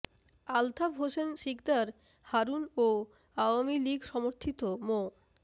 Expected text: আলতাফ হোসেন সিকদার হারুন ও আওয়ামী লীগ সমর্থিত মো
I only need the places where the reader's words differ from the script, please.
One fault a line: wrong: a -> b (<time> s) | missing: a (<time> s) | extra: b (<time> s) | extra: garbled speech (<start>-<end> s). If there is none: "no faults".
no faults